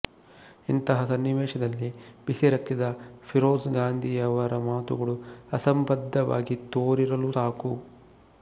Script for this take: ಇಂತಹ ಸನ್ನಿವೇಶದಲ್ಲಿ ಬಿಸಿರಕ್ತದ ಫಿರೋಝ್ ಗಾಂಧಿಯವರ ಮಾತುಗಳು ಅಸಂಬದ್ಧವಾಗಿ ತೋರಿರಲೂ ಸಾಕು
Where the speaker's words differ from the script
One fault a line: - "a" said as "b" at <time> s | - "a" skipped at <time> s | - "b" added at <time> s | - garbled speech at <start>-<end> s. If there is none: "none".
none